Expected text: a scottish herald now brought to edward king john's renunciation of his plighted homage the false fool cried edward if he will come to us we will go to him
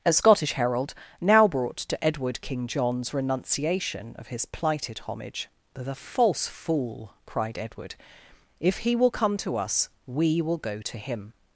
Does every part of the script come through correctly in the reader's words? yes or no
yes